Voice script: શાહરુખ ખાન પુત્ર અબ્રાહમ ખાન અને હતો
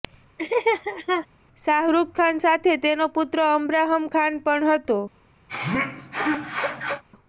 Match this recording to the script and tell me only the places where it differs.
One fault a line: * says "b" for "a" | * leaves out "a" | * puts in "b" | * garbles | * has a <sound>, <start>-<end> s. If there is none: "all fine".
* has a laugh, 0.4-1.3 s
* puts in "સાથે તેનો"
* says "પણ" for "અને"
* has a sneeze, 5.5-7.0 s